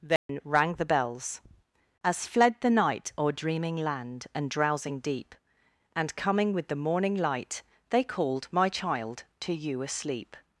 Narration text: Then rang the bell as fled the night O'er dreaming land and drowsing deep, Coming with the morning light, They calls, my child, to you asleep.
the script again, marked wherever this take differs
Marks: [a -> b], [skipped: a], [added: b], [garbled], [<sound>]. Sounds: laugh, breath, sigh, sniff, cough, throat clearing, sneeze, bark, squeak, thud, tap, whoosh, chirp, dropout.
Then [dropout] rang the [bell -> bells] as fled the night O'er dreaming land and drowsing deep, [added: And] Coming with the morning light, They [calls, -> called] my child, to you asleep.